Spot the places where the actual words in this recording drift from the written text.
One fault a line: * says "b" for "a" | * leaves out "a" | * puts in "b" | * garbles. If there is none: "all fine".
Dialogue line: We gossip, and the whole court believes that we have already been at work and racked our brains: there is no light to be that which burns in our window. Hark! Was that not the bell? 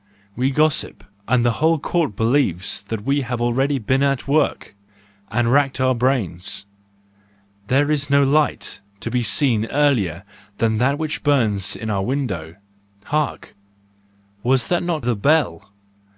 * puts in "seen earlier than"